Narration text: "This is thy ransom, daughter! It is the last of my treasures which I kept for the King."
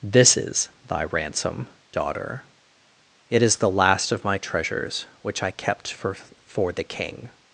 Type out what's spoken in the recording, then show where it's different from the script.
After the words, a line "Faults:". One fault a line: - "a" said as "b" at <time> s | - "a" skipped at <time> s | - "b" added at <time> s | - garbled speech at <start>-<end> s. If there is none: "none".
"This is thy ransom, daughter! It is the last of my treasures which I kept for for the King."
Faults:
- "for" added at 6.5 s